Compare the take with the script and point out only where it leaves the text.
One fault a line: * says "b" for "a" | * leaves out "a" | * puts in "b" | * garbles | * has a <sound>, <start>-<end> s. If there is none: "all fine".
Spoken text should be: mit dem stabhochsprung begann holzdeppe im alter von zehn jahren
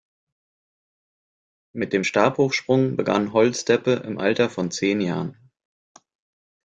all fine